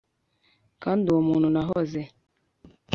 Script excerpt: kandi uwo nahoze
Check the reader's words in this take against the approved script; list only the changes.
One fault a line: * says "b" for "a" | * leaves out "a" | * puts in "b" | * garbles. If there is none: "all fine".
* puts in "muntu"